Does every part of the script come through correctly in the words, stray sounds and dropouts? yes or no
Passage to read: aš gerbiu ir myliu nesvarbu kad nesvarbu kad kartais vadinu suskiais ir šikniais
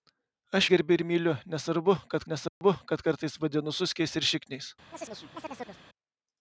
no